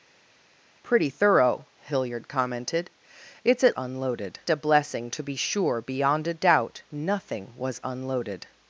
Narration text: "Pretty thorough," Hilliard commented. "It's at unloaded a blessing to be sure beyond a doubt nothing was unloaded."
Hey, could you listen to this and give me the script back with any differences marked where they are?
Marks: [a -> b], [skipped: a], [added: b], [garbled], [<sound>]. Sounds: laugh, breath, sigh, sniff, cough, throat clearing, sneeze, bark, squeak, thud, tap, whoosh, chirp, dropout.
"Pretty thorough," Hilliard commented. "It's at unloaded a blessing to be sure beyond a doubt nothing was unloaded."